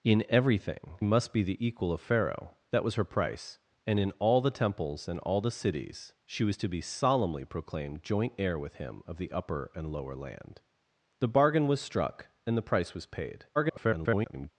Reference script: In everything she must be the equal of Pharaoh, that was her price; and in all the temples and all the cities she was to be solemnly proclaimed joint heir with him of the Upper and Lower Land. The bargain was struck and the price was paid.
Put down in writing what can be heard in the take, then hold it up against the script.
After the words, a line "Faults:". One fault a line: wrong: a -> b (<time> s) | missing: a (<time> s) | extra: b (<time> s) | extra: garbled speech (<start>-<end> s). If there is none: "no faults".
In everything must be the equal of Pharaoh, that was her price; and in all the temples and all the cities she was to be solemnly proclaimed joint heir with him of the Upper and Lower Land. The bargain was struck and the price was paid. [garbled]
Faults:
missing: she (1.0 s)
extra: garbled speech (13.5-14.5 s)